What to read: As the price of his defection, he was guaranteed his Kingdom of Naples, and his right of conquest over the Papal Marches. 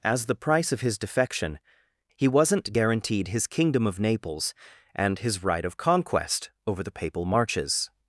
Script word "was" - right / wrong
wrong